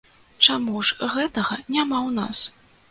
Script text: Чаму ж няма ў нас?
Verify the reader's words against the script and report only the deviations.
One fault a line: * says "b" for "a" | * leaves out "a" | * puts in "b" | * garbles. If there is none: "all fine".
* puts in "гэтага"